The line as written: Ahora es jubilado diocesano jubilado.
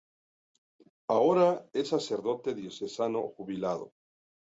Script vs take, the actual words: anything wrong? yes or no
yes